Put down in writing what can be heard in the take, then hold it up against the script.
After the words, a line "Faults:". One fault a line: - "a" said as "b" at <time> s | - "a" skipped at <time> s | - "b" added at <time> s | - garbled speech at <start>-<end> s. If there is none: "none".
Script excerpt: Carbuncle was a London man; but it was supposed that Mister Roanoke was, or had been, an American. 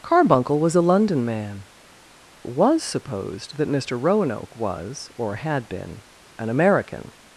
Carbuncle was a London man; was supposed that Mister Roanoke was, or had been, an American.
Faults:
- "but it" skipped at 1.6 s